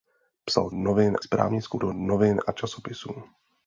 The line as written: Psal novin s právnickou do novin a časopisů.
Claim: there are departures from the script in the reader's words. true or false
false